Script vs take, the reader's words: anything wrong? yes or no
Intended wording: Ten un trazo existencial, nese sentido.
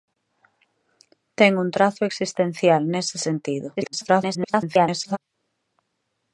yes